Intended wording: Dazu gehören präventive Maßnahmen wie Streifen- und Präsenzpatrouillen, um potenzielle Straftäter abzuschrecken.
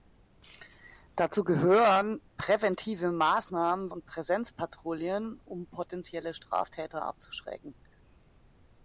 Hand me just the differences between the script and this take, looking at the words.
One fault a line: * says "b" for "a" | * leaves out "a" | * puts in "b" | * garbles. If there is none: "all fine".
* leaves out "wie Streifen"